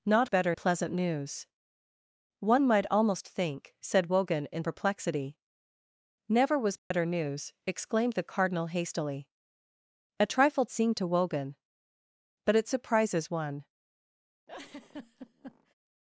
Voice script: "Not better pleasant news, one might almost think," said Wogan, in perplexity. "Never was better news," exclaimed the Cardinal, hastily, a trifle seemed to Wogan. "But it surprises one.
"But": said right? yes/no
yes